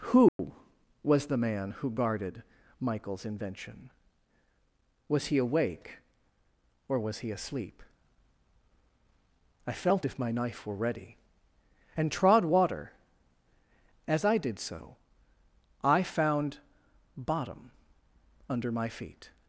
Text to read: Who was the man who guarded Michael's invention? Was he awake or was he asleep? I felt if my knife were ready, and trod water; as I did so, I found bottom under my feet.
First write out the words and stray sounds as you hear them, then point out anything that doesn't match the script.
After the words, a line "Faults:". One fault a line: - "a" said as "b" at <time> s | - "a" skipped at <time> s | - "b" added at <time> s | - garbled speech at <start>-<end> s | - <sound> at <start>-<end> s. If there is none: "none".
Who was the man who guarded Michael's invention? Was he awake or was he asleep? I felt if my knife were ready, and trod water; as I did so, I found bottom under my feet.
Faults:
- dropout at 0.3-0.4 s